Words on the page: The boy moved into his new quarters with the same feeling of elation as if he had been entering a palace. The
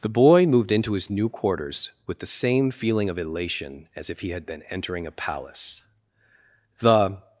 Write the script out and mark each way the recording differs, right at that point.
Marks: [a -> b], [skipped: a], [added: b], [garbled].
The boy moved into his new quarters with the same feeling of elation as if he had been entering a palace. The